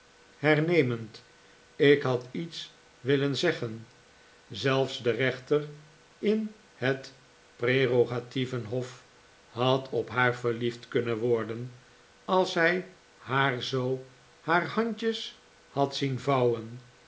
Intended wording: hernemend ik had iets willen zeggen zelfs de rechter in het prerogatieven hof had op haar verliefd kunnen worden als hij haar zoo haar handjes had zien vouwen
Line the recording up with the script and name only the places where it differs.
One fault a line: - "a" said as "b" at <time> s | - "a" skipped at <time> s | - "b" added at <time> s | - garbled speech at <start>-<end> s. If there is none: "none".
none